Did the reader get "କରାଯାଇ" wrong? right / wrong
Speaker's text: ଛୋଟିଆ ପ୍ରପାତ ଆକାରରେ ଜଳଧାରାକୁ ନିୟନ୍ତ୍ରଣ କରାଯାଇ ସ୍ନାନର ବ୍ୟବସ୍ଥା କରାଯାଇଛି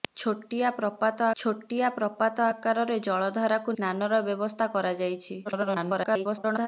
wrong